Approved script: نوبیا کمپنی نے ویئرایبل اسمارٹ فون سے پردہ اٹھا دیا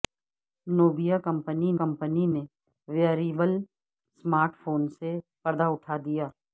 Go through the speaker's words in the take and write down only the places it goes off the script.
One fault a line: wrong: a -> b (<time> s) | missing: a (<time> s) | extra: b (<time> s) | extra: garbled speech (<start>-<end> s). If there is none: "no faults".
extra: کمپنی (1.8 s)